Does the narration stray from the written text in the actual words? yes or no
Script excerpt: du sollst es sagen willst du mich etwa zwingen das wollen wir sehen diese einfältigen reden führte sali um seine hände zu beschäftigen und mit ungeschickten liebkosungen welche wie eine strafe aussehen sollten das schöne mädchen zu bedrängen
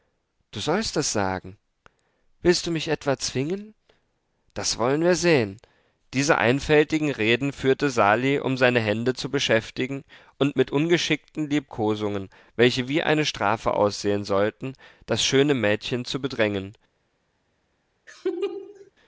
no